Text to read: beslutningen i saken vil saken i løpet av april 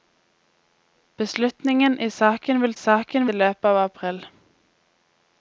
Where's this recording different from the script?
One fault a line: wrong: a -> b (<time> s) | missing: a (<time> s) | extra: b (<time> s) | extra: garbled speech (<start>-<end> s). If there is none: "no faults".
no faults